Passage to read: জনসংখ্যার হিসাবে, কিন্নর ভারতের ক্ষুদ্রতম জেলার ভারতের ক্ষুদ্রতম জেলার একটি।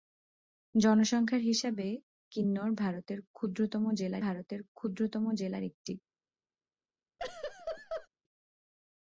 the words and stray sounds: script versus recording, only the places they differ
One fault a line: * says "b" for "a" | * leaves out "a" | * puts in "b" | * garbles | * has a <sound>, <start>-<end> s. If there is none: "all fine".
* has a laugh, 7.2-8.1 s